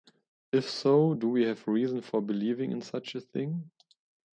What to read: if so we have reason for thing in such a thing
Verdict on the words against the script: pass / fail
fail